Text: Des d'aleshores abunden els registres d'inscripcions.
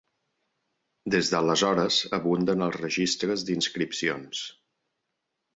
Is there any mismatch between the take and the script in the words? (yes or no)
no